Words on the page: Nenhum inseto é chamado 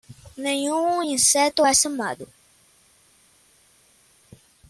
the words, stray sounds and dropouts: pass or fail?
pass